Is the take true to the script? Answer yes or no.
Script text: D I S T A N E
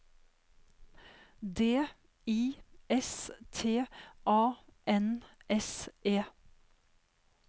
no